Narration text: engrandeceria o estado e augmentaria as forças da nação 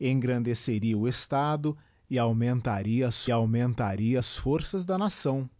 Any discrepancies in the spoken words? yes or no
yes